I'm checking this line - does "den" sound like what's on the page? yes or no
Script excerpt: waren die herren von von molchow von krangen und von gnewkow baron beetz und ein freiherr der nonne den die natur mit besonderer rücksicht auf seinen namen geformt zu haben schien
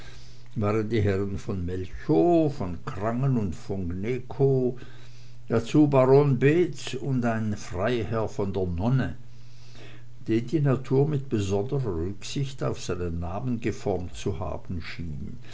yes